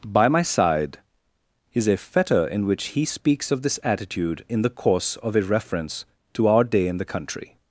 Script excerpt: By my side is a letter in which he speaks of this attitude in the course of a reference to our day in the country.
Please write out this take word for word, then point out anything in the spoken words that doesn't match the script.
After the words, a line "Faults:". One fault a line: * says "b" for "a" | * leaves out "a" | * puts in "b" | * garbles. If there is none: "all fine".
By my side is a fetter in which he speaks of this attitude in the course of a reference to our day in the country.
Faults:
* says "fetter" for "letter"